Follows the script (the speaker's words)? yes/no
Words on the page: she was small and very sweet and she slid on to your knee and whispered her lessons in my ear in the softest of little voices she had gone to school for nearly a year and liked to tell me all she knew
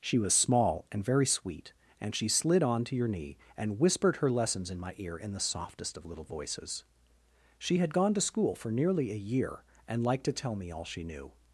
yes